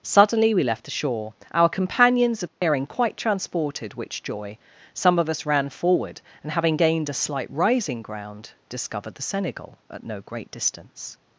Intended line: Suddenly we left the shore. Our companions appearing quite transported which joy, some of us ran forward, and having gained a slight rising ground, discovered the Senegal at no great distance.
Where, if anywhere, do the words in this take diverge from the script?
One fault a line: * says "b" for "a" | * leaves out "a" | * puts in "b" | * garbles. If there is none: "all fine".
all fine